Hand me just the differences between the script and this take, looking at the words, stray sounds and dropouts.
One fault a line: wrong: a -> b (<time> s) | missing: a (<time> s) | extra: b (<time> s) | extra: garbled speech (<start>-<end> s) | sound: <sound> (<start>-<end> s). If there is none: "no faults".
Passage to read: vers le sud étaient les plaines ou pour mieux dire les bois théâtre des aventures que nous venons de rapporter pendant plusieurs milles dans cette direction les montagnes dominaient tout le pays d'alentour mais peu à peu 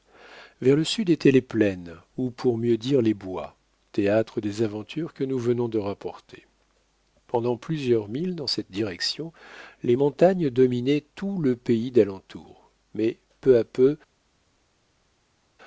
no faults